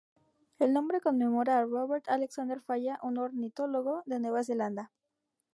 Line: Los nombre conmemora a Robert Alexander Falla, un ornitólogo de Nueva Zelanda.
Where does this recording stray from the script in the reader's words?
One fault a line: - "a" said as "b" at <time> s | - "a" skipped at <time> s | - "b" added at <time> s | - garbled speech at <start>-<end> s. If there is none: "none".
- "Los" said as "El" at 0.6 s